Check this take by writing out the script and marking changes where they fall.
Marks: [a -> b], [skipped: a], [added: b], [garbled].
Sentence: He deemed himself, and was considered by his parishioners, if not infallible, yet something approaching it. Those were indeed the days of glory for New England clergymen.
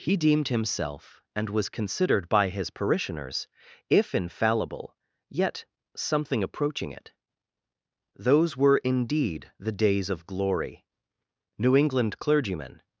He deemed himself, and was considered by his parishioners, if [skipped: not] infallible, yet something approaching it. Those were indeed the days of glory [skipped: for] New England clergymen.